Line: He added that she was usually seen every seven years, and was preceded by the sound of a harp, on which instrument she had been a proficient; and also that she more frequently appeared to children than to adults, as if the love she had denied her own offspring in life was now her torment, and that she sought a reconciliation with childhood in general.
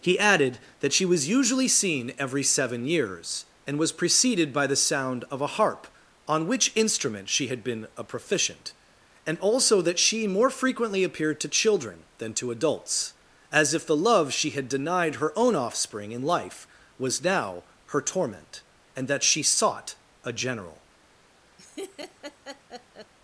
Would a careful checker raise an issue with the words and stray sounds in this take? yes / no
yes